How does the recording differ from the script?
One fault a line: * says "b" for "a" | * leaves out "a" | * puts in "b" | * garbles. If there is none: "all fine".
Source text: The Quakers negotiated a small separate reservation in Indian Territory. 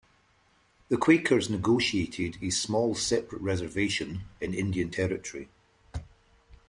all fine